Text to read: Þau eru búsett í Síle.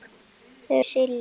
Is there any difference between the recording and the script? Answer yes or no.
yes